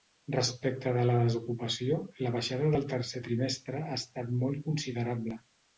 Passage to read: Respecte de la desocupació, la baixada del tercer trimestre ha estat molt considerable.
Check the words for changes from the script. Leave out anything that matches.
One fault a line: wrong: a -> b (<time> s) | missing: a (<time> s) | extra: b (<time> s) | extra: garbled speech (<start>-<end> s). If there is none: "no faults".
no faults